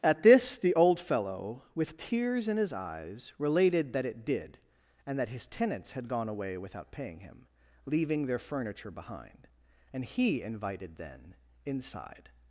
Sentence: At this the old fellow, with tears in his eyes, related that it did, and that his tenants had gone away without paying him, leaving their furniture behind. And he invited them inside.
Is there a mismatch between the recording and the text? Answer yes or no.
yes